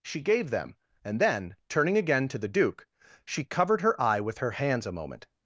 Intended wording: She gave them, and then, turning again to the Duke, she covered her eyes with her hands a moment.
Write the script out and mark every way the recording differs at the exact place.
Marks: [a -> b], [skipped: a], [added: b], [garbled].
She gave them, and then, turning again to the Duke, she covered her [eyes -> eye] with her hands a moment.